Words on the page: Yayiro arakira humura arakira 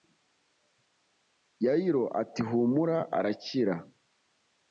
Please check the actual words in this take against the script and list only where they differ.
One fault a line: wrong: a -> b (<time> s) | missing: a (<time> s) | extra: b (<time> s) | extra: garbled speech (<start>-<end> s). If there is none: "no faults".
wrong: arakira -> ati (2.2 s)